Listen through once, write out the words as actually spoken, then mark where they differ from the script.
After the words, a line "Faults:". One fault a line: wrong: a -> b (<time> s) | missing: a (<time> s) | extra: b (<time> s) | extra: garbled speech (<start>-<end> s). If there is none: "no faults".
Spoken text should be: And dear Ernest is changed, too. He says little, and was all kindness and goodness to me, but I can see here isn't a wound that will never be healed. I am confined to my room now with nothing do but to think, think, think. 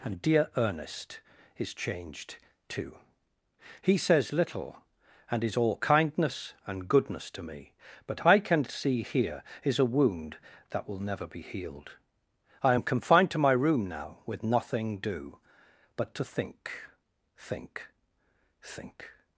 And dear Ernest is changed, too. He says little, and is all kindness and goodness to me, but I can see here is a wound that will never be healed. I am confined to my room now with nothing do but to think, think, think.
Faults:
wrong: was -> is (5.4 s)
wrong: isn't -> is (9.6 s)